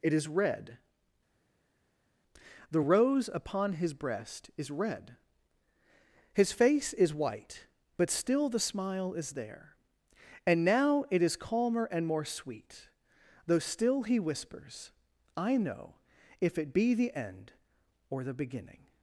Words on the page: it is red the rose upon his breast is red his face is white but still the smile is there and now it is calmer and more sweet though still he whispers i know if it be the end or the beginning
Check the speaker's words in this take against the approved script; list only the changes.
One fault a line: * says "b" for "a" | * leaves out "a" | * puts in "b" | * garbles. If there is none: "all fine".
all fine